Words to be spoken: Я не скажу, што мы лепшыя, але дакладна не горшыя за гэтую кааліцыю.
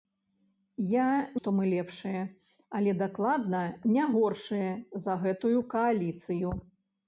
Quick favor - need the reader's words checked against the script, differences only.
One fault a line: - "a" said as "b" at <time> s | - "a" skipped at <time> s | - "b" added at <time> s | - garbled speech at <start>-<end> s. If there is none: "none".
- "не скажу" skipped at 1.1 s